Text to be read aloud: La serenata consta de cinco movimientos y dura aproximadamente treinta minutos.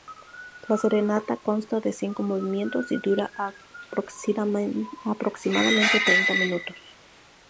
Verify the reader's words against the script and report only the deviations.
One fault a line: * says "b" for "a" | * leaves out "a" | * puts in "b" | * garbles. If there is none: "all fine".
all fine